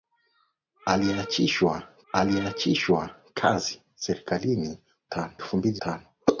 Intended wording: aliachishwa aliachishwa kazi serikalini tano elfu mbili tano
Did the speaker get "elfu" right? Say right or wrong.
right